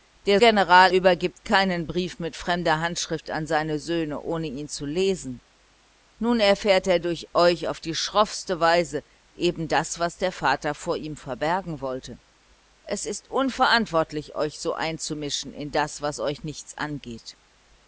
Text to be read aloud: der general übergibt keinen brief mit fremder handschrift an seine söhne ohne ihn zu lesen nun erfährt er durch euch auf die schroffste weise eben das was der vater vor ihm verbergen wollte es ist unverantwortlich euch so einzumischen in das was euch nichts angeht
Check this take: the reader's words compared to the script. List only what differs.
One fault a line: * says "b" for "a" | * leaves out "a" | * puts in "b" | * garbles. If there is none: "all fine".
all fine